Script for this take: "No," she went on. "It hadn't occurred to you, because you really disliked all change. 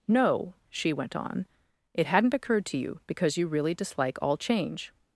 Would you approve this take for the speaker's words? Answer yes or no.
no